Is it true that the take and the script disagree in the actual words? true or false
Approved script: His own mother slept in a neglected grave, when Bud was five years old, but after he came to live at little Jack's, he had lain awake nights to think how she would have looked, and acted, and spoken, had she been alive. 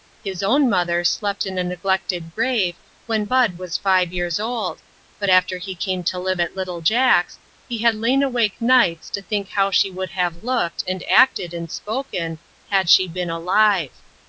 false